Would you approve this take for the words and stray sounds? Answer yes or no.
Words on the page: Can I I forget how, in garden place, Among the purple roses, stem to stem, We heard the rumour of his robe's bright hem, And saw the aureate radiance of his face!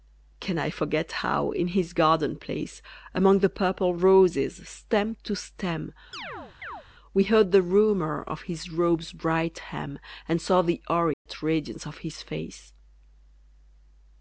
no